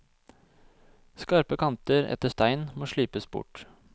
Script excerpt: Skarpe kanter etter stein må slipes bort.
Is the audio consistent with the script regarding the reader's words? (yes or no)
yes